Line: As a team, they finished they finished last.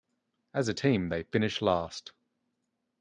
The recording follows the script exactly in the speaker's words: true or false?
false